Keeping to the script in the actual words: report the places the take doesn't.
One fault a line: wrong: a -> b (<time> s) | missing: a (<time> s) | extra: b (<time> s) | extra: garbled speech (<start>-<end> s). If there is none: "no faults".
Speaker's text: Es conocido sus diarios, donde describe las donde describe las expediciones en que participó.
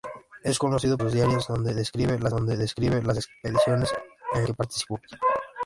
no faults